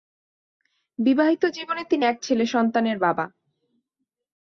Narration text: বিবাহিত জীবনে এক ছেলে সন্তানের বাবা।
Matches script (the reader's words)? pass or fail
fail